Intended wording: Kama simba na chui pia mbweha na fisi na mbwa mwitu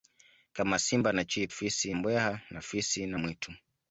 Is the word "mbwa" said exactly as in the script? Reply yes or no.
no